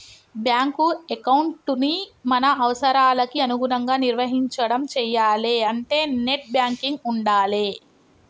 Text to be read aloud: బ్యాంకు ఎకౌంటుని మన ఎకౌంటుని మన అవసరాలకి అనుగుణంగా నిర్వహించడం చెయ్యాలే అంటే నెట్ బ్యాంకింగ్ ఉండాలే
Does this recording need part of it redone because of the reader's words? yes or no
yes